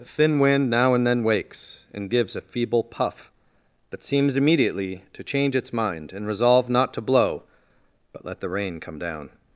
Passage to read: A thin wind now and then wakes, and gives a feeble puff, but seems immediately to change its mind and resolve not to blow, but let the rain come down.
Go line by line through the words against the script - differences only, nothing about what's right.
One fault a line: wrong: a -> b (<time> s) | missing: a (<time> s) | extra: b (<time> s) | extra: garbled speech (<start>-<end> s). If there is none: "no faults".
no faults